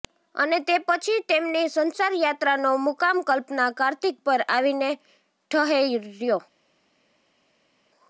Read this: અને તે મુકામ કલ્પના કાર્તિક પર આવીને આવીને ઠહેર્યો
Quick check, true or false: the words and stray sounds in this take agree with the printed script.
false